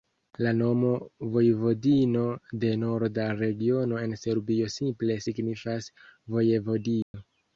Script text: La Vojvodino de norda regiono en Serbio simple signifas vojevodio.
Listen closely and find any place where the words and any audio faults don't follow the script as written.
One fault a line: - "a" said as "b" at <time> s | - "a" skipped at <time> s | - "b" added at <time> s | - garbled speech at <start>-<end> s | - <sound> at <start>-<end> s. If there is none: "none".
- "nomo" added at 0.6 s
- dropout at 7.0-7.1 s